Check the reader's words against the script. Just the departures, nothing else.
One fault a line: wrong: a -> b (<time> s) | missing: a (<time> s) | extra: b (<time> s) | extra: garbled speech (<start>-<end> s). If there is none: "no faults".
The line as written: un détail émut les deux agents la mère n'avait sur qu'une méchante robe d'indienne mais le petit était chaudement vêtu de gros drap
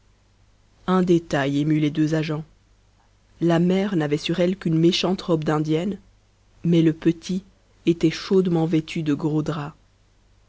extra: elle (4.4 s)